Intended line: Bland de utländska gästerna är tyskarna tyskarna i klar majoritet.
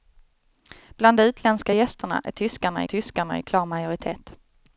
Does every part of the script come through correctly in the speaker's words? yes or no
yes